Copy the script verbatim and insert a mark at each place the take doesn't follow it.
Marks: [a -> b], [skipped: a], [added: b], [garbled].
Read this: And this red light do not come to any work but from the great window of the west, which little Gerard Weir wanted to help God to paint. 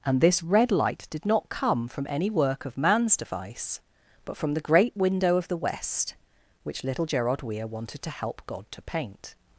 And this red light [do -> did] not come [to -> from] any work [added: of man's device] but from the great window of the west, which little Gerard Weir wanted to help God to paint.